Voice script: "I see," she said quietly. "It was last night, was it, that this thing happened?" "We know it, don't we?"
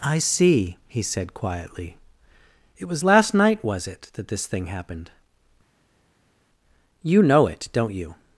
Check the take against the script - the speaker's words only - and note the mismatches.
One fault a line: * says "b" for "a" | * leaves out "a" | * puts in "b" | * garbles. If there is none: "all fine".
* says "he" for "she"
* says "You" for "We"
* says "you" for "we"